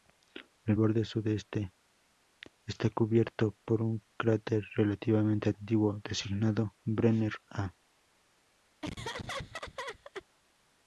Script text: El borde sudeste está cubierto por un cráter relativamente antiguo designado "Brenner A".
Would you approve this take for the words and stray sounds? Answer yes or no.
no